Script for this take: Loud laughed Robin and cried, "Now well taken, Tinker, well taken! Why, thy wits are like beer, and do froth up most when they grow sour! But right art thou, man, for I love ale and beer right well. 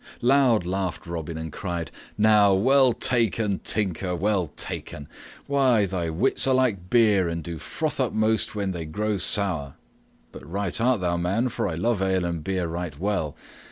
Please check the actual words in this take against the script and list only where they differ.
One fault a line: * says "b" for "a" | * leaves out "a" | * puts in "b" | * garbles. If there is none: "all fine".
all fine